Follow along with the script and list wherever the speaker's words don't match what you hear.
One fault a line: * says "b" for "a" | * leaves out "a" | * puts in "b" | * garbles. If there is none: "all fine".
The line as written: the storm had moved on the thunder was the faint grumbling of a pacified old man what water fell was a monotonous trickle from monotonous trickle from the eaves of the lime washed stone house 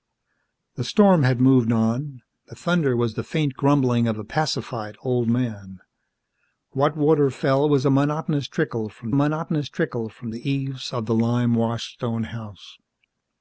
all fine